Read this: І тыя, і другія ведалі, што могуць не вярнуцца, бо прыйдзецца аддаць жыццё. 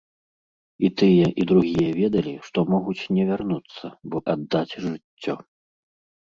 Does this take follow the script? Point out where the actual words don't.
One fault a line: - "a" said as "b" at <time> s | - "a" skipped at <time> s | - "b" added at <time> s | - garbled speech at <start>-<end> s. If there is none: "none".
- "прыйдзецца" skipped at 4.2 s